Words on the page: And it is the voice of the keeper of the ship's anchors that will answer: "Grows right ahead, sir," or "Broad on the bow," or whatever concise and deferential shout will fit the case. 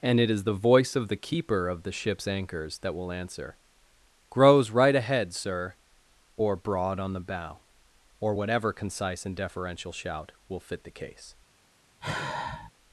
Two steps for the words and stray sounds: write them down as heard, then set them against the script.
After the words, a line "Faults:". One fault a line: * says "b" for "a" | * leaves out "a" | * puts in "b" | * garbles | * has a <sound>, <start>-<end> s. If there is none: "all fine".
And it is the voice of the keeper of the ship's anchors that will answer: "Grows right ahead, sir," or "Broad on the bow," or whatever concise and deferential shout will fit the case.
Faults:
* has a sigh, 12.0-12.7 s